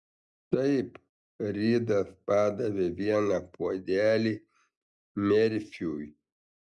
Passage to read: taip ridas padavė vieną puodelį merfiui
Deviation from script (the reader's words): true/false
false